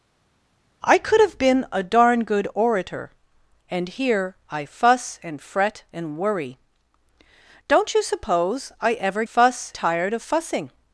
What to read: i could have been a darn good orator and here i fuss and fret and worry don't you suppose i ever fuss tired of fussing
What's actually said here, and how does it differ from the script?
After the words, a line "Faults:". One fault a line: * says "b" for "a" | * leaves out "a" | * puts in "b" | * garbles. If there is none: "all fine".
i could have been a darn good orator and here i fuss and fret and worry don't you suppose i ever fuss tired of fussing
Faults:
all fine